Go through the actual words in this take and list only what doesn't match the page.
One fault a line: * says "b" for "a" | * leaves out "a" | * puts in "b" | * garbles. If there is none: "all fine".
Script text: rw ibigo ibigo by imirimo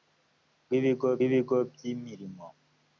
all fine